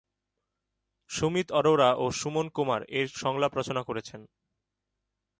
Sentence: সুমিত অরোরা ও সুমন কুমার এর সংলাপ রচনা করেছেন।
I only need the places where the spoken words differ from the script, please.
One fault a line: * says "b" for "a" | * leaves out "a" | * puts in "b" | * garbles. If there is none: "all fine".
all fine